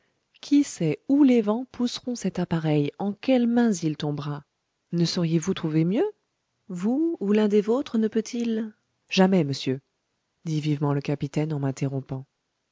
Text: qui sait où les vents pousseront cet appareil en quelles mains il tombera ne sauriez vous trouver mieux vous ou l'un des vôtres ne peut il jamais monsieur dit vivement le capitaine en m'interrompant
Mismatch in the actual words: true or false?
false